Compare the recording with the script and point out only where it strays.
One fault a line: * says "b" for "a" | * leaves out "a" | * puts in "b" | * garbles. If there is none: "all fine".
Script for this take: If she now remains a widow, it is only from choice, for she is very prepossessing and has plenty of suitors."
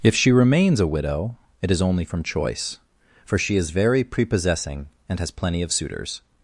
* leaves out "now"